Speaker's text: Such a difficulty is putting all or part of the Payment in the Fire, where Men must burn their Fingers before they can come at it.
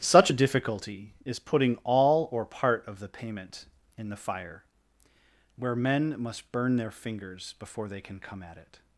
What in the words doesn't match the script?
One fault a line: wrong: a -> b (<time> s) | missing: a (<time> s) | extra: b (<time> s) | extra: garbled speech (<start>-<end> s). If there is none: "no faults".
no faults